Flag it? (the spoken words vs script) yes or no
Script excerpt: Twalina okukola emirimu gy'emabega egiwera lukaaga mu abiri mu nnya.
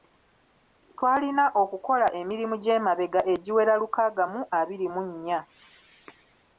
no